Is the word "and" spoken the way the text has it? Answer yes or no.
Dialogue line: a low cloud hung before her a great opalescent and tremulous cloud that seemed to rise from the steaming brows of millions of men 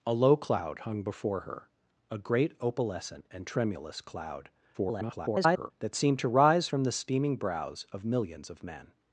yes